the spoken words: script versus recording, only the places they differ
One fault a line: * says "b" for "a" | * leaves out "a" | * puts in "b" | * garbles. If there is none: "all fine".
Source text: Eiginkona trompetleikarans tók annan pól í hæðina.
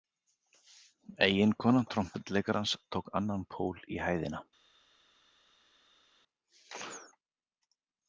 all fine